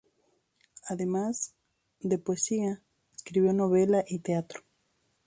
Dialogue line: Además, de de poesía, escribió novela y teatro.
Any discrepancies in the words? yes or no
yes